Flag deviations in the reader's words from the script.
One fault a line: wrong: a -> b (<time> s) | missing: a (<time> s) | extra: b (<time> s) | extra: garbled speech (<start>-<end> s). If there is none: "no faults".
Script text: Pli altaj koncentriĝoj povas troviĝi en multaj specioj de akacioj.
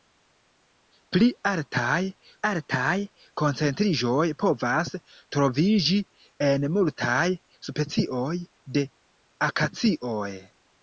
extra: altaj (2.5 s)